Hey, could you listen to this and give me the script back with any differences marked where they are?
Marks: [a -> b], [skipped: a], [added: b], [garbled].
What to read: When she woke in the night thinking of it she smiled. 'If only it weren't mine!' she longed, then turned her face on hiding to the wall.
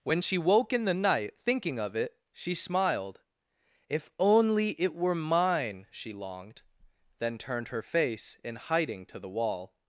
When she woke in the night thinking of it she smiled. 'If only it [weren't -> were] mine!' she longed, then turned her face [on -> in] hiding to the wall.